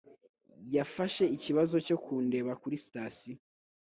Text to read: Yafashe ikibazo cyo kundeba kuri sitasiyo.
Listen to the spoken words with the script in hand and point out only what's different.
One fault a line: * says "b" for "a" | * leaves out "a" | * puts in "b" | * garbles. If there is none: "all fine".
all fine